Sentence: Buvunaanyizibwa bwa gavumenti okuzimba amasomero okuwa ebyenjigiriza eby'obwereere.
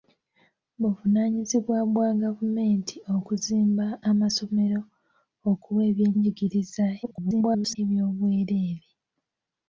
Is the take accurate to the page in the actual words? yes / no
no